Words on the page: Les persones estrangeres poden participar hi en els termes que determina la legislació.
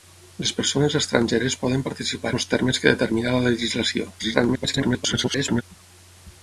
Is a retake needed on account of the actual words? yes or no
yes